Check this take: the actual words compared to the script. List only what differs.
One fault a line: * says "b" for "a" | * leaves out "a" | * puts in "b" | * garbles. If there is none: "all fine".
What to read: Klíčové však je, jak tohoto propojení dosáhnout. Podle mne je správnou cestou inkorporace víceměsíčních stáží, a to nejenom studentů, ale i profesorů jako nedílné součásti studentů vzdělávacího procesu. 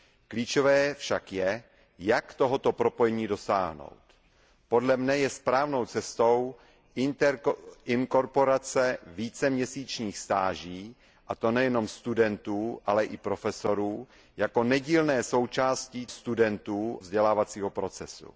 all fine